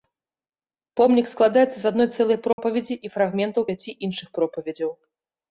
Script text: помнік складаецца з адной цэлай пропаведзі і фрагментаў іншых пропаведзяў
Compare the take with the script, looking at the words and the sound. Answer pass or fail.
fail